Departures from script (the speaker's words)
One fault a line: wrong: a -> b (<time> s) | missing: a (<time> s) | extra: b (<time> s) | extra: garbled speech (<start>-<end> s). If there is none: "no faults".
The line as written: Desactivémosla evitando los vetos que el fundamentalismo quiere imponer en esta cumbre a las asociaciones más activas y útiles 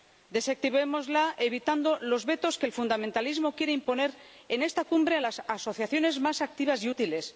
no faults